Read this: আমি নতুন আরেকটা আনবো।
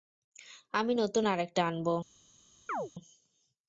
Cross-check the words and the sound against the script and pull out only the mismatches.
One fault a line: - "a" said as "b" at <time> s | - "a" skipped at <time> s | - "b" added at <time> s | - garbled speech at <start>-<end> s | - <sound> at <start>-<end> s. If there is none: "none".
- chirp at 2.7-2.9 s